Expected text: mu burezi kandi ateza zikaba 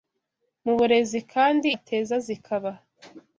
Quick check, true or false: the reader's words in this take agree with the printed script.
true